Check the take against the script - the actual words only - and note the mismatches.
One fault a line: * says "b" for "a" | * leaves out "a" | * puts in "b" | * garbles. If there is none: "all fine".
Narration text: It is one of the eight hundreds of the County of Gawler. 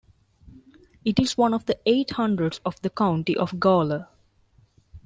all fine